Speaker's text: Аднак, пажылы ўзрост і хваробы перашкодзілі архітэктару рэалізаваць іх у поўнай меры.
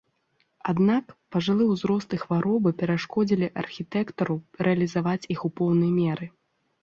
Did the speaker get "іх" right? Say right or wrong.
right